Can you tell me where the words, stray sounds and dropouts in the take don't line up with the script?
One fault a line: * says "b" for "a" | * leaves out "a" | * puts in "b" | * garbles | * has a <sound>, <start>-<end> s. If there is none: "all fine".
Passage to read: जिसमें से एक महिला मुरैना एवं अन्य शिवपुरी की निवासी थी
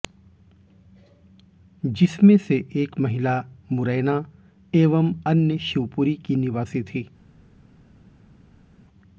all fine